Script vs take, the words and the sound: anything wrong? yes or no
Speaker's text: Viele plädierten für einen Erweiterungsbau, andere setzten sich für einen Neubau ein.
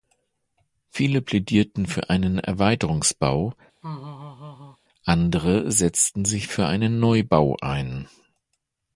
yes